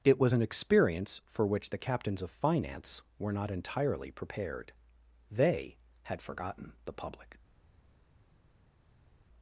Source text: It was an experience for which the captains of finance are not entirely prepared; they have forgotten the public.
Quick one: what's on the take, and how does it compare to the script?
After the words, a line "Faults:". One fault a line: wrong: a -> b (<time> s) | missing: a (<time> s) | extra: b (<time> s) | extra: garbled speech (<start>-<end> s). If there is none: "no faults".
It was an experience for which the captains of finance were not entirely prepared; they had forgotten the public.
Faults:
wrong: are -> were (3.2 s)
wrong: have -> had (6.0 s)